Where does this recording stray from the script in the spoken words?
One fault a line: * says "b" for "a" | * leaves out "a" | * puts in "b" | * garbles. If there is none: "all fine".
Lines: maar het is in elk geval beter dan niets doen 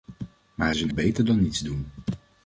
* leaves out "het"
* leaves out "elk geval"